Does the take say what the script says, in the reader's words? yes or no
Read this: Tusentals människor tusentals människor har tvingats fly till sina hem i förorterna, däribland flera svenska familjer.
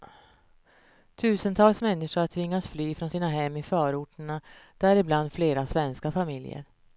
no